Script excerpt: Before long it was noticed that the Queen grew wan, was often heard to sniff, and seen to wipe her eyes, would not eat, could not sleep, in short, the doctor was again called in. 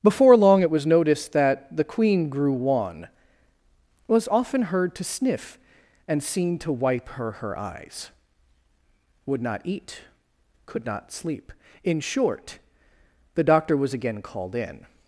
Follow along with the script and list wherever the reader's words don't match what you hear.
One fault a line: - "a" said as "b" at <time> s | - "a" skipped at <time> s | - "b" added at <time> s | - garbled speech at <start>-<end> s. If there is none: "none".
- "her" added at 7.3 s